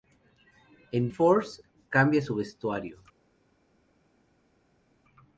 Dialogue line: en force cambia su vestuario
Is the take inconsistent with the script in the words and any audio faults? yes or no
no